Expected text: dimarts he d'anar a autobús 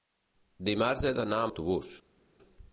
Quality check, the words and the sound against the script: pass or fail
pass